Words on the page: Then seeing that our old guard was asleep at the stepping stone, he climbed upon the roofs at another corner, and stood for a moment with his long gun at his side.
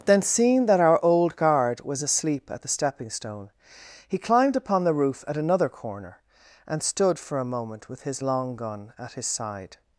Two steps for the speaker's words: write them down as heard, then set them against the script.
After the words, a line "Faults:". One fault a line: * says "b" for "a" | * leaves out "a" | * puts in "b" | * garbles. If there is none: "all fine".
Then seeing that our old guard was asleep at the stepping stone, he climbed upon the roof at another corner, and stood for a moment with his long gun at his side.
Faults:
* says "roof" for "roofs"